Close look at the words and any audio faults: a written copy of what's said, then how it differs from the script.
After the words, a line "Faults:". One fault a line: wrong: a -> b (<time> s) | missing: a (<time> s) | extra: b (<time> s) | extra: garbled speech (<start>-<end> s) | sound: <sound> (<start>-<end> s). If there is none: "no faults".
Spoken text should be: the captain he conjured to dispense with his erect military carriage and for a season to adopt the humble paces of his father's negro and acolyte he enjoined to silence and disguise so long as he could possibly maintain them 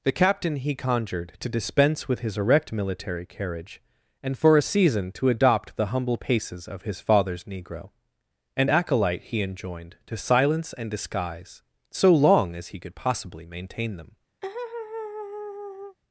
the captain he conjured to dispense with his erect military carriage and for a season to adopt the humble paces of his father's negro and acolyte he enjoined to silence and disguise so long as he could possibly maintain them
Faults:
sound: laugh (14.4-16.0 s)